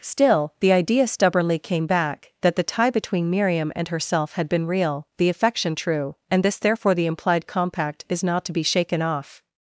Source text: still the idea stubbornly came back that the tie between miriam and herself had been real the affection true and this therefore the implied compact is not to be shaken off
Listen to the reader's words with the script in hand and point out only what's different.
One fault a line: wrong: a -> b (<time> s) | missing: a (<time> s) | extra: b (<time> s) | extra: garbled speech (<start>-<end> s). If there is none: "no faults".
no faults